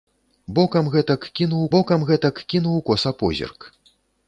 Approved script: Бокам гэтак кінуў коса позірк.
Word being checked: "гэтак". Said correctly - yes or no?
yes